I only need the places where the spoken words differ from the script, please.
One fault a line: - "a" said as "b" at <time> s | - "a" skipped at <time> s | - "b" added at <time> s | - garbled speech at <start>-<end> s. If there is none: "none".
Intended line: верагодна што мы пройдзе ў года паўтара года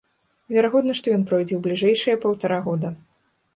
- "мы" said as "ён" at 1.2 s
- "года" said as "бліжэйшыя" at 1.7 s